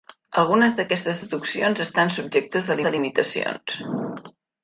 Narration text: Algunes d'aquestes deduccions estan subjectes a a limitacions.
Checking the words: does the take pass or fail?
pass